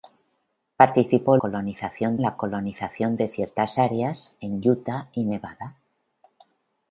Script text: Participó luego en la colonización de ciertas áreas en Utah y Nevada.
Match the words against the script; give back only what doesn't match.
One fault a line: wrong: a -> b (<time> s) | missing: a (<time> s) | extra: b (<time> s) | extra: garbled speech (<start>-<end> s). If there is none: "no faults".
wrong: luego -> colonización (1.4 s)